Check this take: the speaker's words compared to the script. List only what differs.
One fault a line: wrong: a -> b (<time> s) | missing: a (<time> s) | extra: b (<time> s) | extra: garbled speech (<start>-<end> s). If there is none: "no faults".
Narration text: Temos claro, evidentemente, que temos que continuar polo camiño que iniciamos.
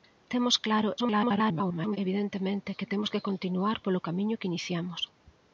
extra: garbled speech (1.0-2.0 s)